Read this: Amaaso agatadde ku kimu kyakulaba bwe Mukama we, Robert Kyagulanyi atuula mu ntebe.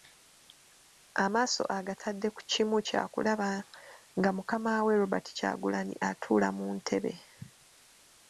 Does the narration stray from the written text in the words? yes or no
yes